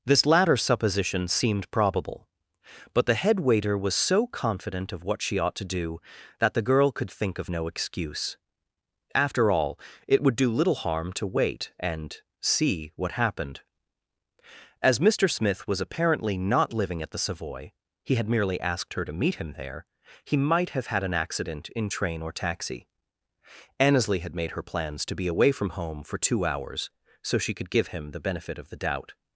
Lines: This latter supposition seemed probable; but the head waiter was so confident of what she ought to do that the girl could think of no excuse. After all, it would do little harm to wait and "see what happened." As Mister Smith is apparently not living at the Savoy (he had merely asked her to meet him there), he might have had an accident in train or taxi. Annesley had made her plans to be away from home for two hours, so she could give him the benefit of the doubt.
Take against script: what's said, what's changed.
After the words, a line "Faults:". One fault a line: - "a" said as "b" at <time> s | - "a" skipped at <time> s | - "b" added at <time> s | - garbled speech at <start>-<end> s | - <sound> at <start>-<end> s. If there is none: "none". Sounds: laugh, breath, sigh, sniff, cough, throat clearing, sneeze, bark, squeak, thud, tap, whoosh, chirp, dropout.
This latter supposition seemed probable; but the head waiter was so confident of what she ought to do that the girl could think of no excuse. After all, it would do little harm to wait and "see what happened." As Mister Smith was apparently not living at the Savoy (he had merely asked her to meet him there), he might have had an accident in train or taxi. Annesley had made her plans to be away from home for two hours, so she could give him the benefit of the doubt.
Faults:
- "is" said as "was" at 15.7 s